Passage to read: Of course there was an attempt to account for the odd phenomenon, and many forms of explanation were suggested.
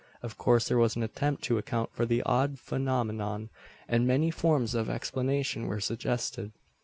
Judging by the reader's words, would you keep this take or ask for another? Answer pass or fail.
pass